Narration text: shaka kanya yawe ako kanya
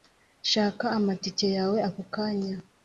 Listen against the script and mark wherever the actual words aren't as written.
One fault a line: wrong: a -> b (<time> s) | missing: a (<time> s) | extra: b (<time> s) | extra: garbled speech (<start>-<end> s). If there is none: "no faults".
wrong: kanya -> amatike (1.0 s)